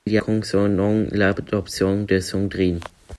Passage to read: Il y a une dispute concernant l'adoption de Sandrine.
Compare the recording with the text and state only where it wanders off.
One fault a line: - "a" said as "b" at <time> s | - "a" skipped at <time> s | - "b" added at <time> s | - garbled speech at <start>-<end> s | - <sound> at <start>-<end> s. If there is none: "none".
- "a une dispute" skipped at 0.2 s